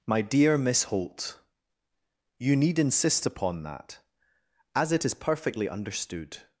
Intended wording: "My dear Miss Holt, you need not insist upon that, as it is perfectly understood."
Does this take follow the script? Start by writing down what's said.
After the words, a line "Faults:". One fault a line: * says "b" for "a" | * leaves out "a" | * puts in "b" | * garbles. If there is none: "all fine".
"My dear Miss Holt, you need insist upon that, as it is perfectly understood."
Faults:
* leaves out "not"